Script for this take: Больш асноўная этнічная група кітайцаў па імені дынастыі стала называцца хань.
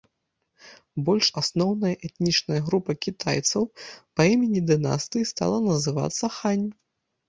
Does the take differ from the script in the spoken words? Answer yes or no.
no